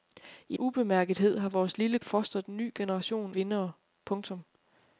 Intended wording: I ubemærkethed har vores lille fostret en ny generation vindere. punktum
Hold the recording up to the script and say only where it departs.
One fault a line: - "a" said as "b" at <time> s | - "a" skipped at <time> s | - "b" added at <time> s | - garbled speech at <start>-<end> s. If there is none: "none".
none